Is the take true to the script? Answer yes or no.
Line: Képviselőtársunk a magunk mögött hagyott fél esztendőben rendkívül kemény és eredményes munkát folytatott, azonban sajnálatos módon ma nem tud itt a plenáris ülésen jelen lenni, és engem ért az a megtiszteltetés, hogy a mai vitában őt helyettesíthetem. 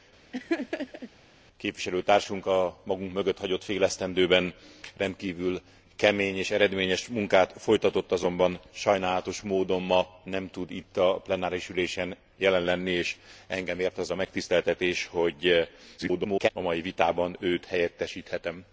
no